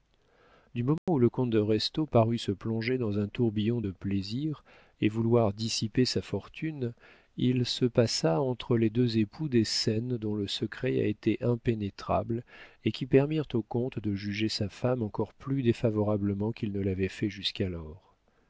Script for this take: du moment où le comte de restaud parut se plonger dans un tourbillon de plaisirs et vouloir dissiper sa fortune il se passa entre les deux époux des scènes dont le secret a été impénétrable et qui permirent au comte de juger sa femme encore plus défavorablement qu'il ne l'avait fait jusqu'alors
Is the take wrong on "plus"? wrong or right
right